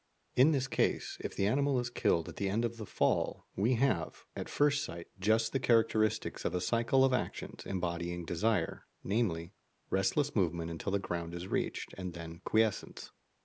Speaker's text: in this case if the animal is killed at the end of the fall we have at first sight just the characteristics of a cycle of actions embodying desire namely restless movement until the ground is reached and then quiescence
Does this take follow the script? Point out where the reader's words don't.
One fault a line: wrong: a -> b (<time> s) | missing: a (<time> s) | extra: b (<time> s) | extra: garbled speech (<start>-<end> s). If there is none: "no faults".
no faults